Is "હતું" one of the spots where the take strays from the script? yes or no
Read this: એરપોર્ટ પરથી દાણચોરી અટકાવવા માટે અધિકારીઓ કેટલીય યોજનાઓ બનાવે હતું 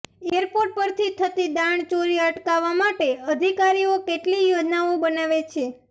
yes